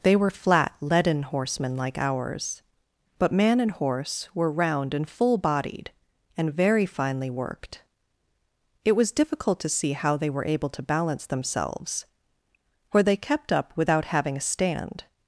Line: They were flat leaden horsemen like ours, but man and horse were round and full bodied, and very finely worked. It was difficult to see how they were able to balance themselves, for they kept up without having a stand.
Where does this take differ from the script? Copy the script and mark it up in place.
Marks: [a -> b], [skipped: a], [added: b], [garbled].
They were flat leaden horsemen like ours, but man and horse were round and full bodied, and very finely worked. It was difficult to see how they were able to balance themselves, for they kept up without having a stand.